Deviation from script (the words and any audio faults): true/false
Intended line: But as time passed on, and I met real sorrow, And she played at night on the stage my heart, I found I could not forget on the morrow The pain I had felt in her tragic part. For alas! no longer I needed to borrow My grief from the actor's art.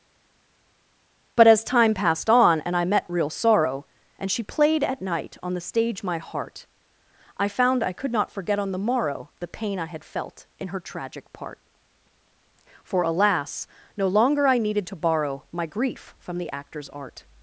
false